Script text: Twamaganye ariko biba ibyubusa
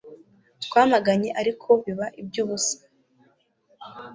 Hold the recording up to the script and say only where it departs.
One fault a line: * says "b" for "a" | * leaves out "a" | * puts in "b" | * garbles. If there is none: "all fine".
all fine